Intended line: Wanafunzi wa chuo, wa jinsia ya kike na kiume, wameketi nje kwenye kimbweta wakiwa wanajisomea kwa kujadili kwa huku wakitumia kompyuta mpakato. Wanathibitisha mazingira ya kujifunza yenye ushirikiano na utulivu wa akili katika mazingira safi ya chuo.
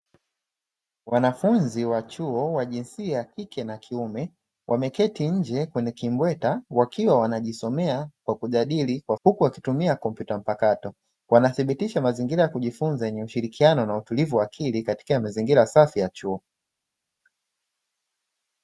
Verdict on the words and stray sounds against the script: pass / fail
pass